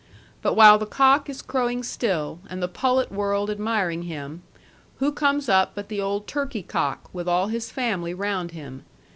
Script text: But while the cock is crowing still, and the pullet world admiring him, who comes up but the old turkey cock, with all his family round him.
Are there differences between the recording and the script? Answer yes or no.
no